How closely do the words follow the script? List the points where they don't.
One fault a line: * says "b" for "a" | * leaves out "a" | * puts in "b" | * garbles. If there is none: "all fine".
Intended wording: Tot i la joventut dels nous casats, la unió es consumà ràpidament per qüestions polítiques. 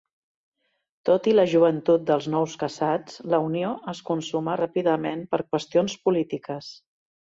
all fine